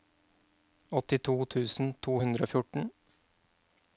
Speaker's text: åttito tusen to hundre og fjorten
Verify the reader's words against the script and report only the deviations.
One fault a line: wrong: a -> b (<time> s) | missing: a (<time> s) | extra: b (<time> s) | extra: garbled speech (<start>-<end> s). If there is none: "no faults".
no faults